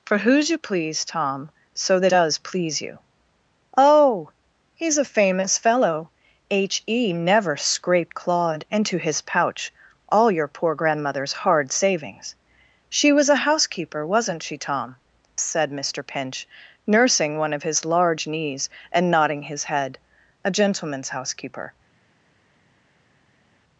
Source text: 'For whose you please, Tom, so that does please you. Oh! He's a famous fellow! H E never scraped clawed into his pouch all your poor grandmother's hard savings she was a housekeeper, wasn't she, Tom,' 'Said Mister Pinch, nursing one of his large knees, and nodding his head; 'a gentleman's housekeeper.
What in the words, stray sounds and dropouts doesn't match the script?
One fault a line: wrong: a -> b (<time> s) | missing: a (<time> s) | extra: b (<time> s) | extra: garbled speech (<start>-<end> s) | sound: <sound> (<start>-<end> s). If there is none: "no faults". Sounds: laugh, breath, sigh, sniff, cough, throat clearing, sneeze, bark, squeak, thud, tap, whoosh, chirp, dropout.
no faults